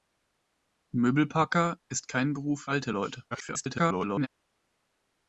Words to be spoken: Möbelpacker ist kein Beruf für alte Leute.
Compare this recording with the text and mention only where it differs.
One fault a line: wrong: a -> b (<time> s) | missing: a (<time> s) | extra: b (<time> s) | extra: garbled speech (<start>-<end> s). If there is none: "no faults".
missing: für (2.6 s)
extra: garbled speech (3.3-4.3 s)